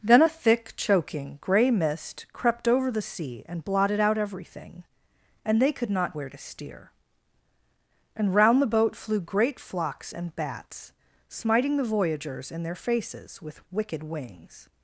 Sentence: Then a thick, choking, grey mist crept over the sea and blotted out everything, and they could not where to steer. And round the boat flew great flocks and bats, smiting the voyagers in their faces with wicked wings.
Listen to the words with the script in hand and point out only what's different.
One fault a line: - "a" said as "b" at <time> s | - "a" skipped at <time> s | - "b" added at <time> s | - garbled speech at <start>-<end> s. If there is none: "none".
none